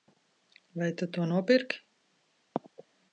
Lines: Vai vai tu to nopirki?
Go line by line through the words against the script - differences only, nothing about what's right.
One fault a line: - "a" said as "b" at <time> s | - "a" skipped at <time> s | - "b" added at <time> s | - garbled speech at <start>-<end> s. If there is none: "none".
- "vai" skipped at 0.9 s